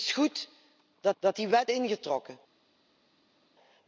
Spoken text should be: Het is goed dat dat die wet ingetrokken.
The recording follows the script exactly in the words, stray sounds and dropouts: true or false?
true